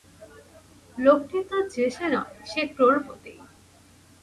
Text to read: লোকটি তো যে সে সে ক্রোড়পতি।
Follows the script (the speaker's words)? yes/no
no